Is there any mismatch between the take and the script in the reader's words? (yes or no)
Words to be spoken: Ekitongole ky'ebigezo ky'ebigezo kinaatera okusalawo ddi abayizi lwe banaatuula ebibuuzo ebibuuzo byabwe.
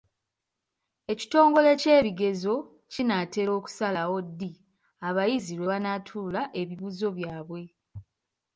yes